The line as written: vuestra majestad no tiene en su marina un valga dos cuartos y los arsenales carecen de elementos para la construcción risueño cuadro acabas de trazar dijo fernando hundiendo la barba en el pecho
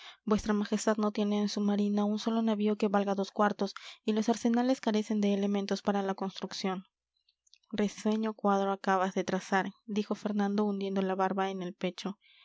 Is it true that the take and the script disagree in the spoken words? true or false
true